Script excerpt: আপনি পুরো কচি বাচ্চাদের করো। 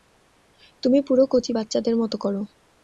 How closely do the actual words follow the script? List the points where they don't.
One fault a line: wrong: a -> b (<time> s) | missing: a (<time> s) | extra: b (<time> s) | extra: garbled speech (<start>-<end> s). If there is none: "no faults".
wrong: আপনি -> তুমি (0.8 s)
extra: মতো (2.0 s)